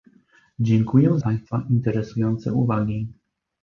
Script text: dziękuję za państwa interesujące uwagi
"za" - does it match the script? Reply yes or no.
no